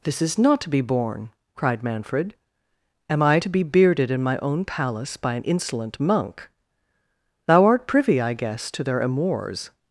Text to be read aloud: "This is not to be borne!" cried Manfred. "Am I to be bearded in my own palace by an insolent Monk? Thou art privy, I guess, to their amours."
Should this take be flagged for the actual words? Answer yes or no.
no